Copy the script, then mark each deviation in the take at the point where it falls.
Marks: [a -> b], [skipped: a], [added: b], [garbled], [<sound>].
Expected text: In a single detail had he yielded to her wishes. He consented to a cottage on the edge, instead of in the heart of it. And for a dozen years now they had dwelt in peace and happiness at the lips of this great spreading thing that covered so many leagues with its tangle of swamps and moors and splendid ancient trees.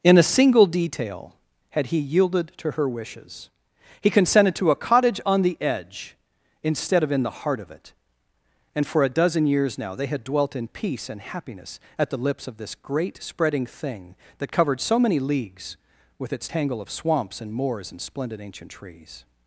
In a single detail had he yielded to her wishes. He consented to a cottage on the edge, instead of in the heart of it. And for a dozen years now they had dwelt in peace and happiness at the lips of this great spreading thing that covered so many leagues with its tangle of swamps and moors and splendid ancient trees.